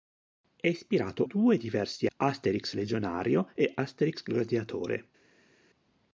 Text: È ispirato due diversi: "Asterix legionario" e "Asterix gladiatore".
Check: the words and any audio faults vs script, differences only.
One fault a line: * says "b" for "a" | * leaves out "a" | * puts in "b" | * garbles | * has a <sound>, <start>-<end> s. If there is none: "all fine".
all fine